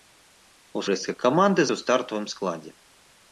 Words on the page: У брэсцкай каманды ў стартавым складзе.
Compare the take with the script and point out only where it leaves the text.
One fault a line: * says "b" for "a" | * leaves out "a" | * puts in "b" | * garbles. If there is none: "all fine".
all fine